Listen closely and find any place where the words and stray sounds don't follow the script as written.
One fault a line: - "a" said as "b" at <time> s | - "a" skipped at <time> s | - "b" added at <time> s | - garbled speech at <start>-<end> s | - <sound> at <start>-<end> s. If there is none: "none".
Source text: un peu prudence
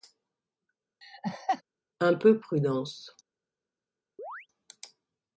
- laugh at 1.0-1.6 s
- chirp at 4.2-4.5 s